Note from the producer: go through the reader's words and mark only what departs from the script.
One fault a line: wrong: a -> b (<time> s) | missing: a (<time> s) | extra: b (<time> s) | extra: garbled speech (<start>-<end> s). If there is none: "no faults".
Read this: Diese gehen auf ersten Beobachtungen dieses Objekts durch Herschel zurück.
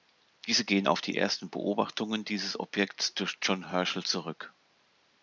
extra: die (1.0 s)
extra: John (3.4 s)